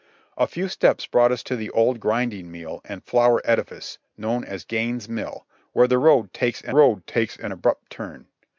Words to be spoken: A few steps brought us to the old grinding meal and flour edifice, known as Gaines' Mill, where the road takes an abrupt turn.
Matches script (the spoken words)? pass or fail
fail